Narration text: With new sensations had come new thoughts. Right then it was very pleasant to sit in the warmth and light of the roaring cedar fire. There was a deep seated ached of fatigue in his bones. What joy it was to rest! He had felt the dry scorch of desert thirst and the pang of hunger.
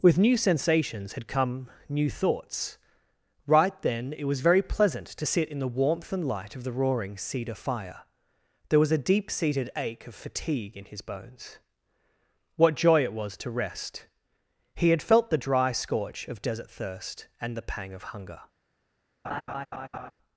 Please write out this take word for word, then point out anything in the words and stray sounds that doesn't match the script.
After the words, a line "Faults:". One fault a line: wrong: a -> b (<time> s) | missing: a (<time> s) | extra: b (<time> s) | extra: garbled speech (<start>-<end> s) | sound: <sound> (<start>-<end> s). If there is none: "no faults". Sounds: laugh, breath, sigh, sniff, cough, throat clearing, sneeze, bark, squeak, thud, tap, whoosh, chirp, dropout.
With new sensations had come new thoughts. Right then it was very pleasant to sit in the warmth and light of the roaring cedar fire. There was a deep seated ache of fatigue in his bones. What joy it was to rest! He had felt the dry scorch of desert thirst and the pang of hunger.
Faults:
wrong: ached -> ache (9.8 s)
sound: laugh (19.2-20.1 s)